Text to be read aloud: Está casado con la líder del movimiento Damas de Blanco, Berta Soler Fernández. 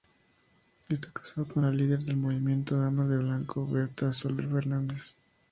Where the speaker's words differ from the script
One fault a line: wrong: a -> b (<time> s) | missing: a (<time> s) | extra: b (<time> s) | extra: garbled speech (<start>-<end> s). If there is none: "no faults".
no faults